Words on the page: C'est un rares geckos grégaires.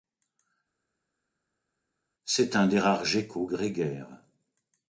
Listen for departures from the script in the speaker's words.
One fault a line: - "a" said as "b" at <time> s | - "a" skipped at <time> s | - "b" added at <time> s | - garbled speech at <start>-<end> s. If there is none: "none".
- "des" added at 2.7 s